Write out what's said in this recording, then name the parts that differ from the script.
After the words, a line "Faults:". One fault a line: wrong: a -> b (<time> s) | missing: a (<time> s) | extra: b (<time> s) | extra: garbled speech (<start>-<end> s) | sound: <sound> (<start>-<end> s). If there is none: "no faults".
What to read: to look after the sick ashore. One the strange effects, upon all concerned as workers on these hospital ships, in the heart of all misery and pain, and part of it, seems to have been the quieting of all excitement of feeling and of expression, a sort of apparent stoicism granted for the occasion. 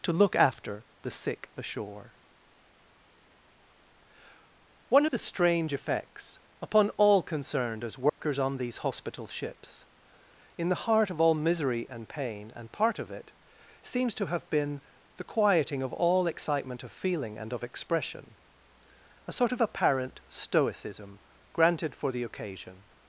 to look after the sick ashore. One the strange effects, upon all concerned as workers on these hospital ships, in the heart of all misery and pain, and part of it, seems to have been the quieting of all excitement of feeling and of expression, a sort of apparent stoicism granted for the occasion.
Faults:
sound: dropout (8.1-8.2 s)